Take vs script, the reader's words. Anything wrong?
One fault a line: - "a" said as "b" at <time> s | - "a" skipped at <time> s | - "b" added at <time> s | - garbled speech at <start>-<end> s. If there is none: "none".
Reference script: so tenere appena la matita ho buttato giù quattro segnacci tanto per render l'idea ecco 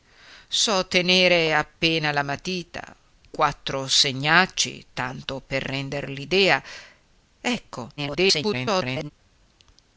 - "ho buttato giù" skipped at 3.0 s
- garbled speech at 8.0-9.1 s